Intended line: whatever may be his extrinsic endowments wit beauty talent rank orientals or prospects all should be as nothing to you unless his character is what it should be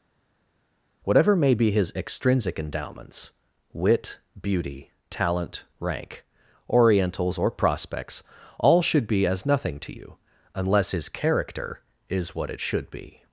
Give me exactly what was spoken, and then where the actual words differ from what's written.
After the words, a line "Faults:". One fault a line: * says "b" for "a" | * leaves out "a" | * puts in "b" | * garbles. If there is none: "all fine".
whatever may be his extrinsic endowments wit beauty talent rank orientals or prospects all should be as nothing to you unless his character is what it should be
Faults:
all fine